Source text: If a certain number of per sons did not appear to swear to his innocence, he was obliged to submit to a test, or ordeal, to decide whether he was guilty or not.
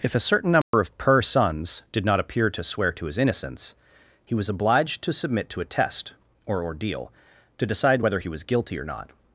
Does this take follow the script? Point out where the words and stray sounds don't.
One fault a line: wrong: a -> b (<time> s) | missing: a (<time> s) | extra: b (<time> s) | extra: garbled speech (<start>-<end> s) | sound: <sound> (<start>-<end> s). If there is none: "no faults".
sound: dropout (0.6-0.7 s)